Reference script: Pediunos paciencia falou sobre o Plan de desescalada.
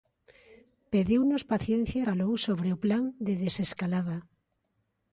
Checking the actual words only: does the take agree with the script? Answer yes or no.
yes